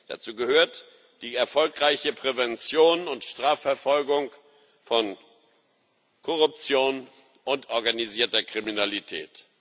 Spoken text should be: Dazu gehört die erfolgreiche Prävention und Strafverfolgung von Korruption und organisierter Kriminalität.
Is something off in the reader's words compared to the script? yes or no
no